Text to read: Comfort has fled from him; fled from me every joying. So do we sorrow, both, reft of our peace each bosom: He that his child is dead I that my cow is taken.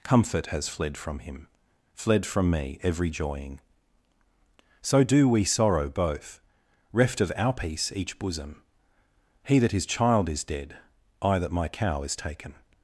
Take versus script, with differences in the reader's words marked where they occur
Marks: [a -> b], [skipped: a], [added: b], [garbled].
Comfort has fled from him; fled from me every joying. So do we sorrow, both, reft of our peace each bosom: He that his child is dead I that my cow is taken.